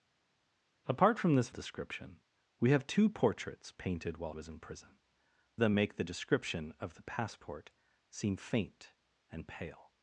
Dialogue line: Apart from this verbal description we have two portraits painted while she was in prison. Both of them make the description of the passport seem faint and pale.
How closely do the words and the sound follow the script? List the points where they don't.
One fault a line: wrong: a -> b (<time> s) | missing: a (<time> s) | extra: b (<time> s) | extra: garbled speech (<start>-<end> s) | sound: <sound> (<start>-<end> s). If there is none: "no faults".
missing: verbal (1.5 s)
missing: she (4.4 s)
missing: Both of (5.0 s)